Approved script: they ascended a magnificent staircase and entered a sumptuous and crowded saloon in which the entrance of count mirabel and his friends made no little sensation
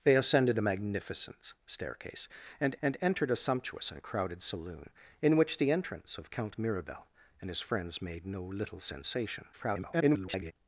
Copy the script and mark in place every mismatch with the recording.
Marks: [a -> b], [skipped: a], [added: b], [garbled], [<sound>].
they ascended a magnificent staircase and [added: and] entered a sumptuous and crowded saloon in which the entrance of count mirabel and his friends made no little sensation [garbled]